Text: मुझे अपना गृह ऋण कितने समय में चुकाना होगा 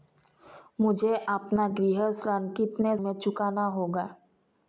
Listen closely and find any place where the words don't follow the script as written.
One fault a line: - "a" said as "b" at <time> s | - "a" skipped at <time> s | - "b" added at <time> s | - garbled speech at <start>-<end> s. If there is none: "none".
- "समय" skipped at 2.9 s